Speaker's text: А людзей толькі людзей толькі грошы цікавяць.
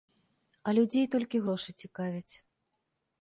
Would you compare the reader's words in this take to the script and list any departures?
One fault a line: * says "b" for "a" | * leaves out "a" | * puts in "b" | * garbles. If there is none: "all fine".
* leaves out "людзей толькі"